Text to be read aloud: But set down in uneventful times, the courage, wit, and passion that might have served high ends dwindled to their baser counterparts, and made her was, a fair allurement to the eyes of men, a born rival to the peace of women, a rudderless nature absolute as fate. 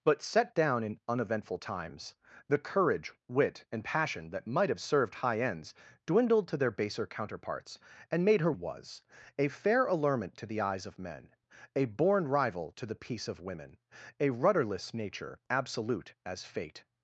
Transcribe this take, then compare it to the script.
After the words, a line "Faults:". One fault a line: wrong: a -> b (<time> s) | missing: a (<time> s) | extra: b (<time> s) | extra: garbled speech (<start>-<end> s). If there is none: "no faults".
But set down in uneventful times, the courage, wit, and passion that might have served high ends dwindled to their baser counterparts, and made her was, a fair allurement to the eyes of men, a born rival to the peace of women, a rudderless nature absolute as fate.
Faults:
no faults